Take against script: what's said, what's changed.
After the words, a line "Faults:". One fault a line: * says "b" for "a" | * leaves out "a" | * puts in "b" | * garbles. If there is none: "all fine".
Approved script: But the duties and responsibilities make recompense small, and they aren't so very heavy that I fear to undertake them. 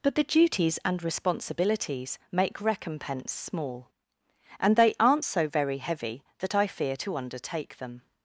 But the duties and responsibilities make recompense small, and they aren't so very heavy that I fear to undertake them.
Faults:
all fine